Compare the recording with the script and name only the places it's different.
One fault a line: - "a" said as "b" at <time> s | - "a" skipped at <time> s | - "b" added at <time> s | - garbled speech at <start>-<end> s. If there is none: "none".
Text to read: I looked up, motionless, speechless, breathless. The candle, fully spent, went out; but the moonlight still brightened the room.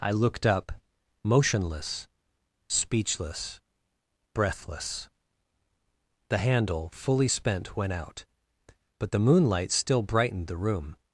- "candle" said as "handle" at 6.3 s